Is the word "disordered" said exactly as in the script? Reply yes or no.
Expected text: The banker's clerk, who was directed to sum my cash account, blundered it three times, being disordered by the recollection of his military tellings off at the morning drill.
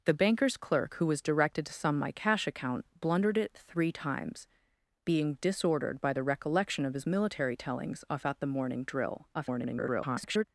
yes